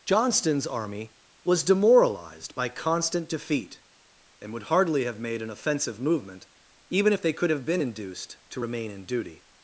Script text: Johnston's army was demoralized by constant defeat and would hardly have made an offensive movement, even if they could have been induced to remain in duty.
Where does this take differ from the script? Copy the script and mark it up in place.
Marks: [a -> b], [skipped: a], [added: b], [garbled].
Johnston's army was demoralized by constant defeat and would hardly have made an offensive movement, even if they could have been induced to remain in duty.